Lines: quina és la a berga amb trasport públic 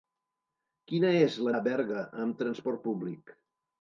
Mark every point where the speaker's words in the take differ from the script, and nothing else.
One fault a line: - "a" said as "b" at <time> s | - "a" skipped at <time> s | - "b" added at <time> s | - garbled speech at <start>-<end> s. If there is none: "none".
none